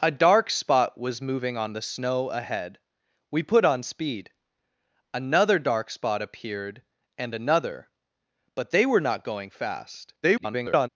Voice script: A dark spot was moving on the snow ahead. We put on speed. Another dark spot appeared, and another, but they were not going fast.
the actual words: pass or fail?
fail